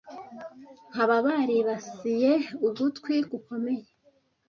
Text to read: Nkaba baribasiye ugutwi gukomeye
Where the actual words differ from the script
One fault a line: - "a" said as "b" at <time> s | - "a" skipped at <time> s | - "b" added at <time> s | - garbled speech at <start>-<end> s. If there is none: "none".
none